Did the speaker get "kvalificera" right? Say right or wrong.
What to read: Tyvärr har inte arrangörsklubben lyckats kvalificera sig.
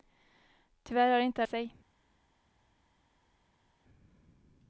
wrong